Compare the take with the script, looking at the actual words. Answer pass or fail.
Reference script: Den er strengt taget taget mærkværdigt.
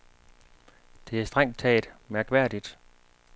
fail